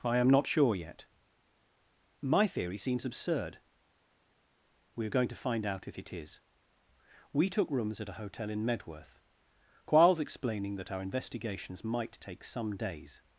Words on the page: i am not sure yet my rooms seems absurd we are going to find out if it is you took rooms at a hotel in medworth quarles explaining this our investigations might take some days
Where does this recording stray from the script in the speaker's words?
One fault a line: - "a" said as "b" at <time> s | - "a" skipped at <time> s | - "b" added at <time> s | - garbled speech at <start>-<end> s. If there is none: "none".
- "rooms" said as "theory" at 2.5 s
- "you" said as "we" at 7.3 s
- "this" said as "that" at 10.8 s